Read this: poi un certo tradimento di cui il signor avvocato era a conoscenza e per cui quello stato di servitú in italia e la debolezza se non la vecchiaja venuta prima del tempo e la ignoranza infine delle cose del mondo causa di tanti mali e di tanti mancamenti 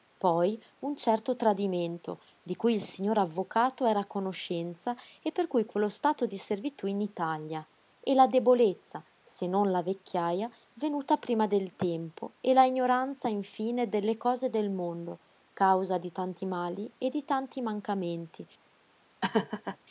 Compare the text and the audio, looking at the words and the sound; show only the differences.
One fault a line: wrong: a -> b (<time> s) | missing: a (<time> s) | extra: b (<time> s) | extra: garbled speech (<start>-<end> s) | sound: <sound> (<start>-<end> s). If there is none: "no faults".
sound: laugh (19.2-19.8 s)